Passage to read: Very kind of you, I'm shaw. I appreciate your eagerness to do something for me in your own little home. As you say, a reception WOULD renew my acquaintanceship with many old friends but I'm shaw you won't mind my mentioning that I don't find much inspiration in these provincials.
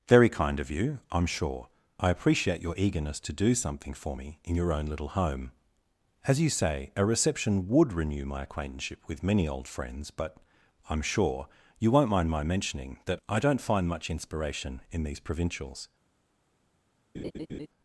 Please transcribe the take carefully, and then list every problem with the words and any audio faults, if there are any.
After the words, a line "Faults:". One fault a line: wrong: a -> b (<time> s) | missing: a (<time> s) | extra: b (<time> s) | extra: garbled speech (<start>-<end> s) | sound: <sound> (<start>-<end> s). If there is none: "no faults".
Very kind of you, I'm sure. I appreciate your eagerness to do something for me in your own little home. As you say, a reception WOULD renew my acquaintanceship with many old friends but I'm sure you won't mind my mentioning that I don't find much inspiration in these provincials.
Faults:
wrong: shaw -> sure (1.2 s)
wrong: shaw -> sure (11.0 s)
sound: laugh (17.1-17.7 s)